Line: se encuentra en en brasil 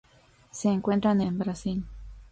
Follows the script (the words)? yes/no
yes